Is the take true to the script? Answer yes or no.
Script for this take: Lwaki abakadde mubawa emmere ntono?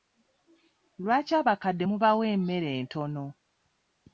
yes